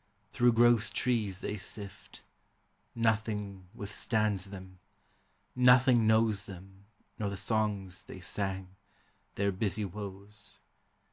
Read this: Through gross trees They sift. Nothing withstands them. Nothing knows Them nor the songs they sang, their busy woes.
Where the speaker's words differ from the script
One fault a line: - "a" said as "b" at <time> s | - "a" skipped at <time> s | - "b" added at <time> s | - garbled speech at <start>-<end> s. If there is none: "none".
none